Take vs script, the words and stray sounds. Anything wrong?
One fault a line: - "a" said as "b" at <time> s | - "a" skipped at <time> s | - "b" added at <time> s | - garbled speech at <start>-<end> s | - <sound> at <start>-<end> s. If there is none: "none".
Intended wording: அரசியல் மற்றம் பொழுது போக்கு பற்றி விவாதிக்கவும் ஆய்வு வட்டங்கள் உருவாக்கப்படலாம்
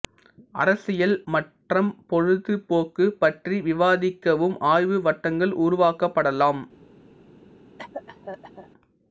- cough at 7.8-8.7 s